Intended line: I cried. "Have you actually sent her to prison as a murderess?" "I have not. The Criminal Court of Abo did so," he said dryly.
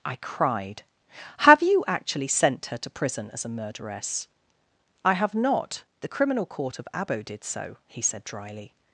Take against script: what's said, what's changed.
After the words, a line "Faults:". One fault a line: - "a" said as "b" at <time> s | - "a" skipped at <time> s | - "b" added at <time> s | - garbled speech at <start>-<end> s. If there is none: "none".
I cried. "Have you actually sent her to prison as a murderess?" "I have not. The Criminal Court of Abo did so," he said dryly.
Faults:
none